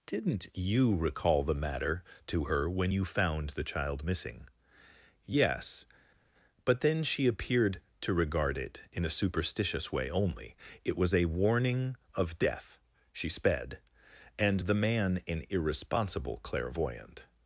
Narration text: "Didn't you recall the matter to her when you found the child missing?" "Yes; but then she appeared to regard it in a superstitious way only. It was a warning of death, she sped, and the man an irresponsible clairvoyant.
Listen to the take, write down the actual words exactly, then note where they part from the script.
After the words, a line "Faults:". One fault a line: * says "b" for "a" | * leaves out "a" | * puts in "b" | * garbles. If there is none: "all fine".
"Didn't you recall the matter to her when you found the child missing?" "Yes; but then she appeared to regard it in a superstitious way only. It was a warning of death, she sped, and the man an irresponsible clairvoyant.
Faults:
all fine